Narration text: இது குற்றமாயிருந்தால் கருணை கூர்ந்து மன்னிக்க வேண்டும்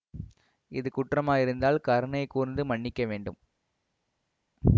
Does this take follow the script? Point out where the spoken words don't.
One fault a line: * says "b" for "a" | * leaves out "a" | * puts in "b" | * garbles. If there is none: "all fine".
all fine